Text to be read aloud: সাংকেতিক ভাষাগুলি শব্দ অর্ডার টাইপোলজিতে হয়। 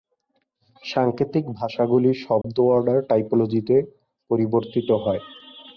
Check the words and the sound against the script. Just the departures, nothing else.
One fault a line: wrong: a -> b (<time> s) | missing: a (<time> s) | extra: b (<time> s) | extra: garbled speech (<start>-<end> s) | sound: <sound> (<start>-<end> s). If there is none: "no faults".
sound: dropout (2.4-2.4 s)
extra: পরিবর্তিত (4.3 s)